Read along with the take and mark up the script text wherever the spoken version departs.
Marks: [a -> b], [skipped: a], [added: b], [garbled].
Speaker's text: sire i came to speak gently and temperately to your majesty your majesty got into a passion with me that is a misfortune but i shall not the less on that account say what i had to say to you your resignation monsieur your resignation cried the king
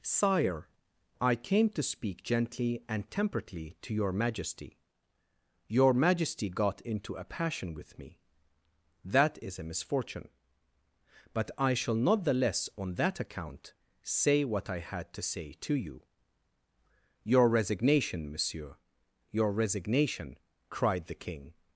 sire i came to speak gently and temperately to your majesty your majesty got into a passion with me that is a misfortune but i shall not the less on that account say what i had to say to you your resignation monsieur your resignation cried the king